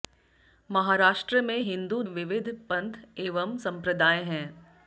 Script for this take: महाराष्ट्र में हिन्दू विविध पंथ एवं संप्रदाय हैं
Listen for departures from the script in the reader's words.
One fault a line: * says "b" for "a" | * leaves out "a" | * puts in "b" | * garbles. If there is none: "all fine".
all fine